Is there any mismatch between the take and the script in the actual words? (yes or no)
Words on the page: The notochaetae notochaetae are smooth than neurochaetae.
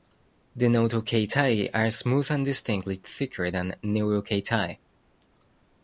yes